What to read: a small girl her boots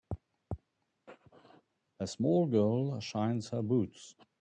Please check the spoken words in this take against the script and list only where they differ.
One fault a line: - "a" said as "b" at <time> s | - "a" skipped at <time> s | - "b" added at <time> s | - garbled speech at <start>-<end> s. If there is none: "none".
- "shines" added at 3.0 s